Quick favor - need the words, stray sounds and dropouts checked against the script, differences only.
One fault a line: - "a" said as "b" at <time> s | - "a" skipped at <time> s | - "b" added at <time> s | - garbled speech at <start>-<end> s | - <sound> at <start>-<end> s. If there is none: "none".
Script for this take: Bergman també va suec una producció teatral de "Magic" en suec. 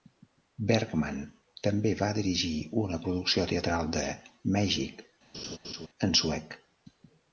- "suec" said as "dirigir" at 2.2 s
- laugh at 5.3-5.9 s